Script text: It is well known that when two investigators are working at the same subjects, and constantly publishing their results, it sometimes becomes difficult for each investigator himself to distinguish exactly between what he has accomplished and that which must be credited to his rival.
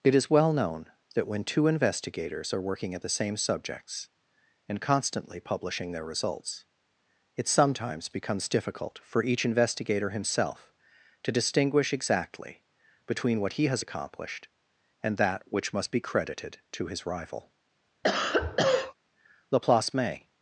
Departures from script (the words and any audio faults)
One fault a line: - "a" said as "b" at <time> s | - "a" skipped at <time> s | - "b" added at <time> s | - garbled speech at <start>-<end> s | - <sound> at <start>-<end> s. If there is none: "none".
- cough at 18.0-18.9 s
- "Laplace may" added at 19.5 s